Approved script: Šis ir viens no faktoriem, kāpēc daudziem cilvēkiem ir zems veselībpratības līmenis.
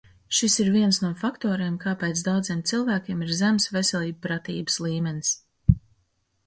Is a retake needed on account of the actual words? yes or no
no